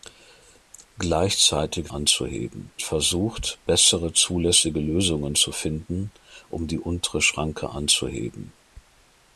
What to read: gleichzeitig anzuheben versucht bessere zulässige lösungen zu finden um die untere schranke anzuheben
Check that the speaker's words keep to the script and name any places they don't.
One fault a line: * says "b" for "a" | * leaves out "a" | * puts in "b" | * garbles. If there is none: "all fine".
all fine